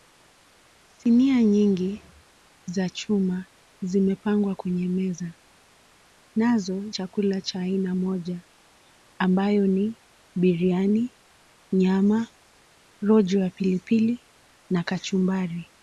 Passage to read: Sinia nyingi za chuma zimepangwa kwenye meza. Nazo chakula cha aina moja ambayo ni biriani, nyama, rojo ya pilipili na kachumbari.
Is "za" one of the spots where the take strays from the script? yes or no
no